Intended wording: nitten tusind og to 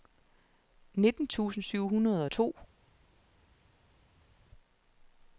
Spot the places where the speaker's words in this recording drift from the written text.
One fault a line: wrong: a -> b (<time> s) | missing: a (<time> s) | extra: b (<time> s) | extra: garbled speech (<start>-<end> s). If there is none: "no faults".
extra: syv hundrede (1.6 s)